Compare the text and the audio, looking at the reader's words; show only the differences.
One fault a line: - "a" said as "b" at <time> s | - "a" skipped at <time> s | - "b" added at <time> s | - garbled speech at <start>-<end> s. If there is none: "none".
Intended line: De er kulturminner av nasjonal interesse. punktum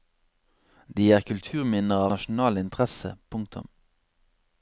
- "av" skipped at 2.1 s